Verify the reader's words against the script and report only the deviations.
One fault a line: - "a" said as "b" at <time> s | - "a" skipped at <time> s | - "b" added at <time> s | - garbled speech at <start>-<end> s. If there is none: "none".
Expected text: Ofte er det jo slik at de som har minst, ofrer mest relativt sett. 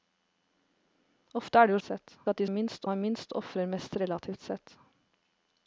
- "slik" said as "sett" at 1.8 s
- "som" said as "minst" at 2.5 s